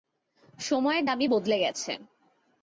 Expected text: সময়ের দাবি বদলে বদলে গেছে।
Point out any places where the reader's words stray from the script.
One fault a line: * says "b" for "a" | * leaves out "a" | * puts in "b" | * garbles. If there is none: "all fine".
* leaves out "বদলে"